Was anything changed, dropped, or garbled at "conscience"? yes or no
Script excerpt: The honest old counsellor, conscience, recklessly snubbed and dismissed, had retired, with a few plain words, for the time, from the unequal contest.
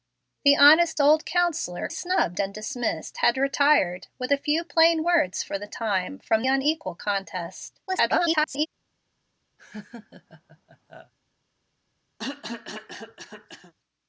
yes